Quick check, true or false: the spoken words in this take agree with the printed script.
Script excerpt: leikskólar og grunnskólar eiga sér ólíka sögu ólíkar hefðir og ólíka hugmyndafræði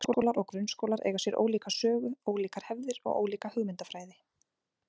true